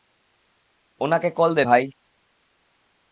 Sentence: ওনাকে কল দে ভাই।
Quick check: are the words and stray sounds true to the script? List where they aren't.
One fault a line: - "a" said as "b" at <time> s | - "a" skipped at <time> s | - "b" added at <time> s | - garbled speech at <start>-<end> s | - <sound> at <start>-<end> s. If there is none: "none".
none